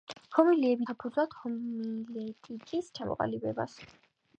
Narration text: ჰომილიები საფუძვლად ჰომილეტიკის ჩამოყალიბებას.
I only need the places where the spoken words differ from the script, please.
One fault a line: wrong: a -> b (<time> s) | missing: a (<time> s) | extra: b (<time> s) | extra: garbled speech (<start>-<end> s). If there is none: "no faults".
no faults